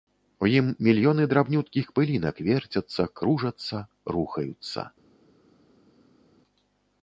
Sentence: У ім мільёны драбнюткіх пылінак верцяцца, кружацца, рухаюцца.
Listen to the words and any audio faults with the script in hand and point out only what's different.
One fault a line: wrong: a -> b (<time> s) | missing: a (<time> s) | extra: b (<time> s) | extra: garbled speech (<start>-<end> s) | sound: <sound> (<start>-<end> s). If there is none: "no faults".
no faults